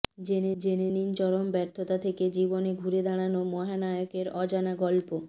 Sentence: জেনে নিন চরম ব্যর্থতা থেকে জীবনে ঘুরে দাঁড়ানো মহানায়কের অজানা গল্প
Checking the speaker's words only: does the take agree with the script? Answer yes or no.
no